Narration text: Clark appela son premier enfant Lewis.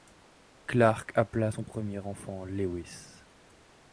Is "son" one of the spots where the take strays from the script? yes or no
no